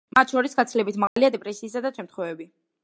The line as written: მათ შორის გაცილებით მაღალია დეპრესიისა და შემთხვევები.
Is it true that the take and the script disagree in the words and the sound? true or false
true